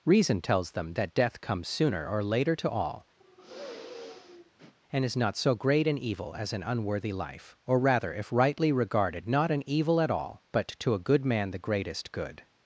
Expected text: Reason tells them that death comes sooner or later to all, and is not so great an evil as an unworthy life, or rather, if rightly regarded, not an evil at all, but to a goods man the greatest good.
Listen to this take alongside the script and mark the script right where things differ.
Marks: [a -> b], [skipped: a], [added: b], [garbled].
Reason tells them that death comes sooner or later to all, and is not so great an evil as an unworthy life, or rather, if rightly regarded, not an evil at all, but to a [goods -> good] man the greatest good.